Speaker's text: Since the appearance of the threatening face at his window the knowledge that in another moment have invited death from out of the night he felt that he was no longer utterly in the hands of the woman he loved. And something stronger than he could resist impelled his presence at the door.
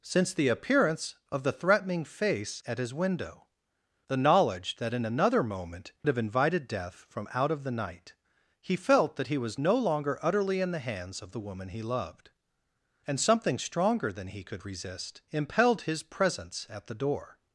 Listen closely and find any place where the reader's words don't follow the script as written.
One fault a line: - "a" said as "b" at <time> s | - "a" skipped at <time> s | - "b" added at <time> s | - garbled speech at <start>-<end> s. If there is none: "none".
none